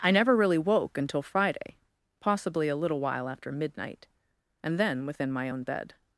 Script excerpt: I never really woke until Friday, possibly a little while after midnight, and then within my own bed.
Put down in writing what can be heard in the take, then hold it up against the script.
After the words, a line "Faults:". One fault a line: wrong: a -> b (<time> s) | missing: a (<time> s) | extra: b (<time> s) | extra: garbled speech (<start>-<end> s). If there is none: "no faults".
I never really woke until Friday, possibly a little while after midnight, and then within my own bed.
Faults:
no faults